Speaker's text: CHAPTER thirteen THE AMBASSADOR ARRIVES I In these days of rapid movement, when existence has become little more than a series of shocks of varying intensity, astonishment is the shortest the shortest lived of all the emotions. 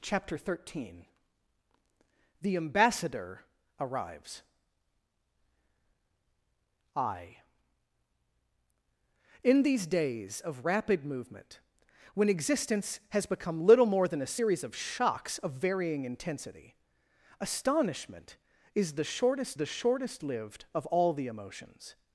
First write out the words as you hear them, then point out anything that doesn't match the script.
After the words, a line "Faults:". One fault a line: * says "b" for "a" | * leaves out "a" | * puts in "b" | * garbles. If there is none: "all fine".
CHAPTER thirteen THE AMBASSADOR ARRIVES I In these days of rapid movement, when existence has become little more than a series of shocks of varying intensity, astonishment is the shortest the shortest lived of all the emotions.
Faults:
all fine